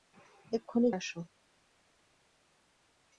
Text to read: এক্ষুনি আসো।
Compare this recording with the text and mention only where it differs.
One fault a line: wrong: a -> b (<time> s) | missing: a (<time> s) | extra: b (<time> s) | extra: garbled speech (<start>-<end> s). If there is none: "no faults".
no faults